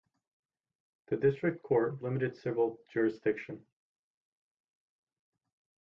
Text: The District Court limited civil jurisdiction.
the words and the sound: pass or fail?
pass